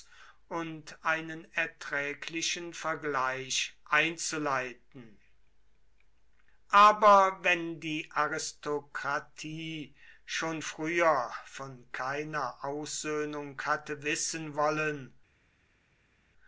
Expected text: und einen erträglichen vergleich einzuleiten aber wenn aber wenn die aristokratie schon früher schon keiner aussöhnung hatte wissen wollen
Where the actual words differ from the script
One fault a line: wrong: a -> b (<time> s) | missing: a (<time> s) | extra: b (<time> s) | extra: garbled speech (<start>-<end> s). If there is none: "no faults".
missing: aber wenn (7.8 s)
wrong: schon -> von (11.5 s)